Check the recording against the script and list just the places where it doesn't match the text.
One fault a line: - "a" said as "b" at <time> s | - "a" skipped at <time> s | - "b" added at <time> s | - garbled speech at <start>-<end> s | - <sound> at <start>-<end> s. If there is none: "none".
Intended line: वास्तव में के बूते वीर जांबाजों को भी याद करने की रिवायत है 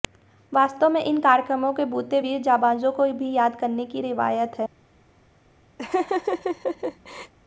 - "इन कार्यक्रमों" added at 1.0 s
- laugh at 5.8-7.3 s